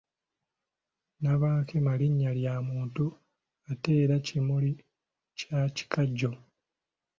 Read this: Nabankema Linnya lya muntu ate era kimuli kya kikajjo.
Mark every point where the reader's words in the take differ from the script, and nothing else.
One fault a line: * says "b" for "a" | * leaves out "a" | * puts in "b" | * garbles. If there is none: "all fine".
all fine